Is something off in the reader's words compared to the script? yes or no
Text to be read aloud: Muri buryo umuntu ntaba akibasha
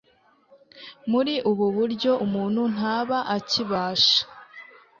yes